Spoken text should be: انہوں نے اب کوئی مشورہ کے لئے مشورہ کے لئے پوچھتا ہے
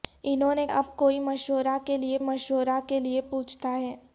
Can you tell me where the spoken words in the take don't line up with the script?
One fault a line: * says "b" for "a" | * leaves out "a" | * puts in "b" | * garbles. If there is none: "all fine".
all fine